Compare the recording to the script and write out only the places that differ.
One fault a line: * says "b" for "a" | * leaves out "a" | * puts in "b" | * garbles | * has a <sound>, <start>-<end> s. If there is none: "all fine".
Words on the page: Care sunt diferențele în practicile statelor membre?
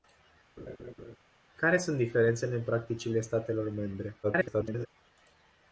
* has a laugh, 0.6-1.2 s
* garbles